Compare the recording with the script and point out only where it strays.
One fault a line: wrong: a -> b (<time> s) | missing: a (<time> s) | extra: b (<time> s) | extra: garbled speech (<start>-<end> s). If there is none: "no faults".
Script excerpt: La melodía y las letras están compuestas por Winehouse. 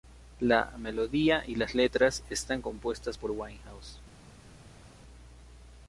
no faults